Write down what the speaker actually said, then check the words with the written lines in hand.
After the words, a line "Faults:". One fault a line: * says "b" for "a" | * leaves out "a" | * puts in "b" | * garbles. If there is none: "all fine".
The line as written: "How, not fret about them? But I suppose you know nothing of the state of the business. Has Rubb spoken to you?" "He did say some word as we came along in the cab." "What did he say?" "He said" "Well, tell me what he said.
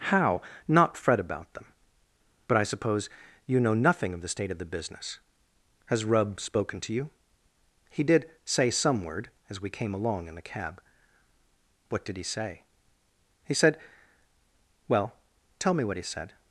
"How, not fret about them? But I suppose you know nothing of the state of the business. Has Rubb spoken to you?" "He did say some word as we came along in the cab." "What did he say?" "He said" "Well, tell me what he said.
Faults:
all fine